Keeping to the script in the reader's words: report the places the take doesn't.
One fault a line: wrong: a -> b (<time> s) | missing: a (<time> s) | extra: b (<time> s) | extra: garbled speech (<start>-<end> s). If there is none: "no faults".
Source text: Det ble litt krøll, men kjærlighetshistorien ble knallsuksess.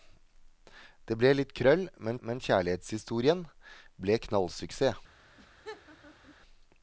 extra: men (2.2 s)